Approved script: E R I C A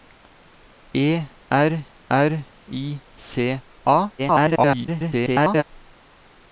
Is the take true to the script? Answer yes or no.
no